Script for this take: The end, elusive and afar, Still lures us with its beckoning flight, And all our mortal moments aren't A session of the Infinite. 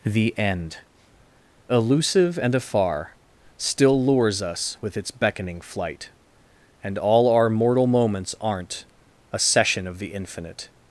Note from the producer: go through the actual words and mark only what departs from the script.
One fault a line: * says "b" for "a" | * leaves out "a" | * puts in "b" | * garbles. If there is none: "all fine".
all fine